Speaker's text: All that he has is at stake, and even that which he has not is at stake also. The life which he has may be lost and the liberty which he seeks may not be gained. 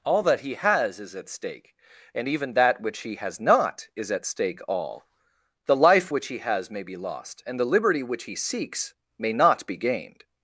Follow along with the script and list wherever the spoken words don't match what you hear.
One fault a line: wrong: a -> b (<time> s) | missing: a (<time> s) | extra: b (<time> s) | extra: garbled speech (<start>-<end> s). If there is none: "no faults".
wrong: also -> all (4.7 s)